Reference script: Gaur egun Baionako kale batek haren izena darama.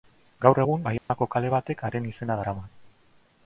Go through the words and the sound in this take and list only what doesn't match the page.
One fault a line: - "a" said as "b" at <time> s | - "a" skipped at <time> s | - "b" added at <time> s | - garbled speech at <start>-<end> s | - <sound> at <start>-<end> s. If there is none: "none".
- dropout at 1.0-1.1 s